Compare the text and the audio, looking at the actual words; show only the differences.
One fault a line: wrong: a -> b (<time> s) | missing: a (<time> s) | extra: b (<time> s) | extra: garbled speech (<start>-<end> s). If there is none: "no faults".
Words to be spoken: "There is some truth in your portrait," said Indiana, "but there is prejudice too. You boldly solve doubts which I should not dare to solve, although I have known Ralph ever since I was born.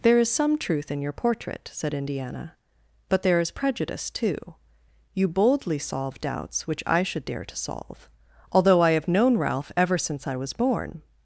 missing: not (7.2 s)